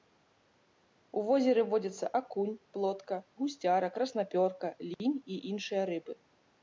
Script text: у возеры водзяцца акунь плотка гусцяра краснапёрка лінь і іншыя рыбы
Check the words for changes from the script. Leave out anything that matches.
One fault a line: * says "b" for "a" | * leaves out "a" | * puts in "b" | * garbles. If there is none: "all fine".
all fine